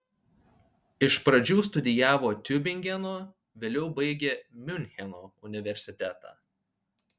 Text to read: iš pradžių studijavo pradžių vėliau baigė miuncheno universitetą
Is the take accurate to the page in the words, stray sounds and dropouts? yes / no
no